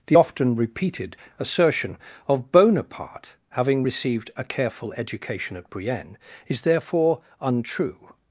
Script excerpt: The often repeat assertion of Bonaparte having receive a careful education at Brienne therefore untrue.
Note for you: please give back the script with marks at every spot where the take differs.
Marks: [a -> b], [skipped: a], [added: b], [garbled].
The often [repeat -> repeated] assertion of Bonaparte having [receive -> received] a careful education at Brienne [added: is] therefore untrue.